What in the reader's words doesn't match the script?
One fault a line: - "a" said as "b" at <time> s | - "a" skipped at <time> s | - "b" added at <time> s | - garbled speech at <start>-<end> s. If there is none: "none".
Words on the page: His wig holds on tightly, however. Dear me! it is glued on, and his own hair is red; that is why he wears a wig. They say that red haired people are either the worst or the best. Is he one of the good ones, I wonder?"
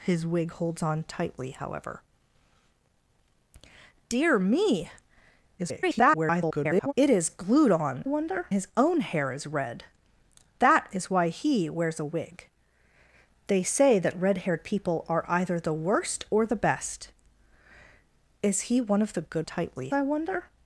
- garbled speech at 5.6-6.9 s
- "and" said as "wonder" at 8.0 s
- "ones" said as "tightly" at 19.5 s